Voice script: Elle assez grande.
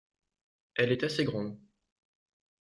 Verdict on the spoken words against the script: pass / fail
fail